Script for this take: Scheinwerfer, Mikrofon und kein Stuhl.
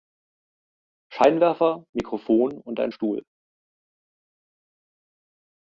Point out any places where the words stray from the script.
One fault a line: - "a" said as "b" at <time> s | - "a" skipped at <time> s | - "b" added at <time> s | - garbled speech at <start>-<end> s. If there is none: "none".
- "kein" said as "ein" at 2.8 s